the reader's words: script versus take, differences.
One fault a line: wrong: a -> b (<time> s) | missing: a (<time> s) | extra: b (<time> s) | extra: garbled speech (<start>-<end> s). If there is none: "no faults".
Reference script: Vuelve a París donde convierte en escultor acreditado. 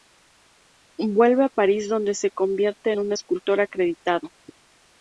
extra: se (2.1 s)
extra: un (3.0 s)